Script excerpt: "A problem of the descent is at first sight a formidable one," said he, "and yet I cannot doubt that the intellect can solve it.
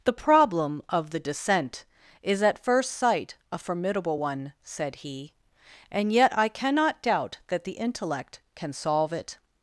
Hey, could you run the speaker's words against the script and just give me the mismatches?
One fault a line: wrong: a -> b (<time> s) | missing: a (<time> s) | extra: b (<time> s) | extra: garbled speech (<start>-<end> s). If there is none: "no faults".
wrong: A -> The (0.0 s)